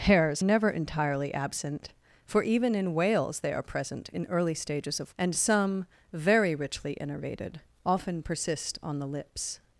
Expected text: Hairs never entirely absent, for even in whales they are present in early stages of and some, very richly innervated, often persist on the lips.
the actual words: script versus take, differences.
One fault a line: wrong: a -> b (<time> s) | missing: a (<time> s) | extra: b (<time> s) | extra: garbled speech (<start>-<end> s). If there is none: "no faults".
no faults